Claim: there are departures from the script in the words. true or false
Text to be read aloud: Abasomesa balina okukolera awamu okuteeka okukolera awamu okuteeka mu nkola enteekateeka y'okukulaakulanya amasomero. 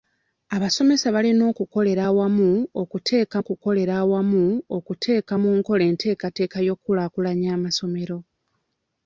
false